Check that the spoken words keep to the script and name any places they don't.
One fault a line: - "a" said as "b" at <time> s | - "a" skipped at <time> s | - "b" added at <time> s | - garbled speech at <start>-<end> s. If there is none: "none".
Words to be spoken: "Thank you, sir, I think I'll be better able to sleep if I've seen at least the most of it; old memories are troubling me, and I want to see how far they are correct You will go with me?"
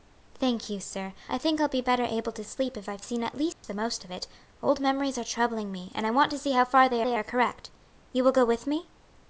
- "they" added at 7.0 s